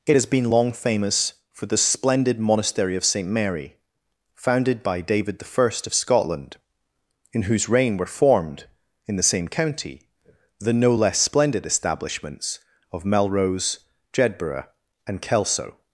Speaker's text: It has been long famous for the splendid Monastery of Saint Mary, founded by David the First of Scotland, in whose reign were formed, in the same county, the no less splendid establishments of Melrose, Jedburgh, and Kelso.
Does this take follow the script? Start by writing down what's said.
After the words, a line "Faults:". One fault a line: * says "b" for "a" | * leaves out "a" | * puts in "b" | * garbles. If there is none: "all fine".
It has been long famous for the splendid Monastery of Saint Mary, founded by David the First of Scotland, in whose reign were formed, in the same county, the no less splendid establishments of Melrose, Jedburgh, and Kelso.
Faults:
all fine